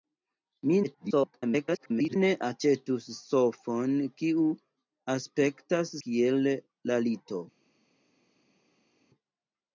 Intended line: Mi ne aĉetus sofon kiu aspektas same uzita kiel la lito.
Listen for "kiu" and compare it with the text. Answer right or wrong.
right